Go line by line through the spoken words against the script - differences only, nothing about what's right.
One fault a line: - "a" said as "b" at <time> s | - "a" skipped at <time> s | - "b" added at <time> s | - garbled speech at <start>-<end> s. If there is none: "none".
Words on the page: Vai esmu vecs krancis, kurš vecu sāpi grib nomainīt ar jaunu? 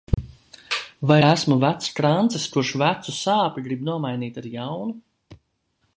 none